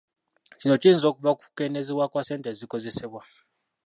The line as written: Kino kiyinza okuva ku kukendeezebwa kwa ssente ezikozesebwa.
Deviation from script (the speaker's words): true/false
false